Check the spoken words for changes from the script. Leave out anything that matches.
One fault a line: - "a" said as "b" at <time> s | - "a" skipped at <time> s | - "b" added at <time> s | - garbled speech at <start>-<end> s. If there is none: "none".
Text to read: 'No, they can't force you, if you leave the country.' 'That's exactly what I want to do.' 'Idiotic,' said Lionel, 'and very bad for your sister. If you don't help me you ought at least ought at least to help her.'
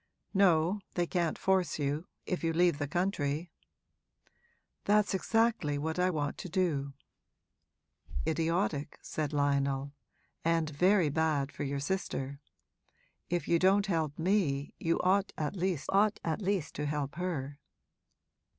none